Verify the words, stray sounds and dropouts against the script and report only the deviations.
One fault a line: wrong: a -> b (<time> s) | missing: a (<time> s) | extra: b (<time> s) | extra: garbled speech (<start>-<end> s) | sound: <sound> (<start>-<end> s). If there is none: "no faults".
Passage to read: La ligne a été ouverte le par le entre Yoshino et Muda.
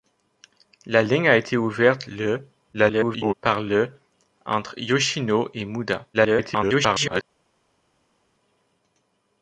extra: garbled speech (2.7-3.3 s)
extra: garbled speech (6.1-7.2 s)